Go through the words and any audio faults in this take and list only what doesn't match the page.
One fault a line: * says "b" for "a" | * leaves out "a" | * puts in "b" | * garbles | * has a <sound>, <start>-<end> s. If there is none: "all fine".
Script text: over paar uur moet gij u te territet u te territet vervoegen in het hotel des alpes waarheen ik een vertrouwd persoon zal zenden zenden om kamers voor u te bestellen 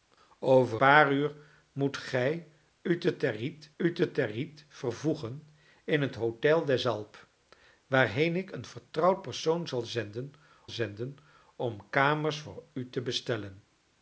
all fine